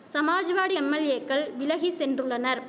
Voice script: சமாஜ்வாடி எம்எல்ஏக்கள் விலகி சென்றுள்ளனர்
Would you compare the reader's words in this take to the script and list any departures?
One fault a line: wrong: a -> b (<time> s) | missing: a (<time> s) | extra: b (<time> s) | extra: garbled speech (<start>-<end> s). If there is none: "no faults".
no faults